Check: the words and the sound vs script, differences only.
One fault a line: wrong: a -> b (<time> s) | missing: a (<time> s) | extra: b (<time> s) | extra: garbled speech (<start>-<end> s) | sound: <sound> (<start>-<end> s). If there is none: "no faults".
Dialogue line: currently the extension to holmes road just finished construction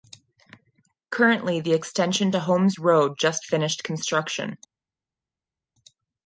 no faults